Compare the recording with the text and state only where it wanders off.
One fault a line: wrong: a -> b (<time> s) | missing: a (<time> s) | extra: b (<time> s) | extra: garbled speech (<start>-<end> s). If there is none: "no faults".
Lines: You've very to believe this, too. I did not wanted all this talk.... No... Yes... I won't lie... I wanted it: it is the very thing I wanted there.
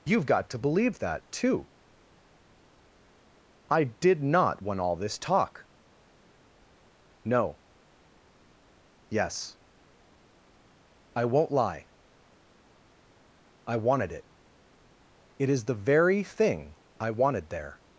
wrong: very -> got (0.2 s)
wrong: this -> that (1.0 s)
wrong: wanted -> want (4.6 s)